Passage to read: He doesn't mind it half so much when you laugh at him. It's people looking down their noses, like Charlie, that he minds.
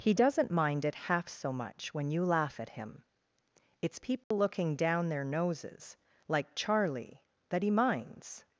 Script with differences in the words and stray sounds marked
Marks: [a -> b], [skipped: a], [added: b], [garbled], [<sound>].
He doesn't mind it half so much when you laugh at him. It's people [dropout] looking down their noses, like Charlie, that he minds.